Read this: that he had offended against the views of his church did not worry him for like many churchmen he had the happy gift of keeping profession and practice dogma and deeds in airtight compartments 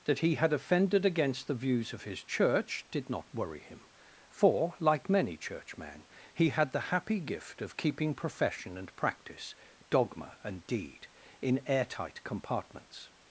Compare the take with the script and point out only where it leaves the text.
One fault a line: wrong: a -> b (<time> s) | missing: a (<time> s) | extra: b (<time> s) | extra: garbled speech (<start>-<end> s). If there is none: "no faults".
wrong: deeds -> deed (10.7 s)